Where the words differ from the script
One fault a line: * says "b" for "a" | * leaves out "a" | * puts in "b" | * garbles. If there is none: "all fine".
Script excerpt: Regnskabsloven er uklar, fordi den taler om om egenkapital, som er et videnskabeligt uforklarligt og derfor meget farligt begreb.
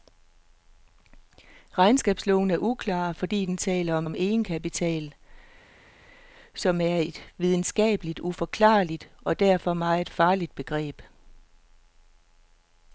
all fine